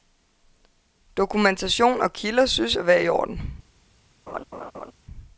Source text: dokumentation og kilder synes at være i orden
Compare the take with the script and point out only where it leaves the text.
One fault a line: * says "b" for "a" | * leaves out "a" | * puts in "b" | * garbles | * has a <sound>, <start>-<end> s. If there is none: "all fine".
* has a laugh, 4.3-4.9 s